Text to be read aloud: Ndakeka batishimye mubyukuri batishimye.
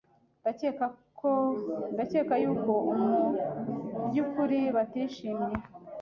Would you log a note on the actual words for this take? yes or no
yes